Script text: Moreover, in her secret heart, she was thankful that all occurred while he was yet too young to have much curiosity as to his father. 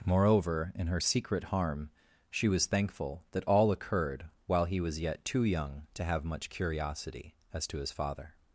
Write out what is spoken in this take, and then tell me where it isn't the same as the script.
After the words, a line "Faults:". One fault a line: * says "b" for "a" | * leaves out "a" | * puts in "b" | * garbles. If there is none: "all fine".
Moreover, in her secret harm, she was thankful that all occurred while he was yet too young to have much curiosity as to his father.
Faults:
* says "harm" for "heart"